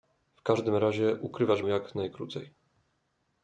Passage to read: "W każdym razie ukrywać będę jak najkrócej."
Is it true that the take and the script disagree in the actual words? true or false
true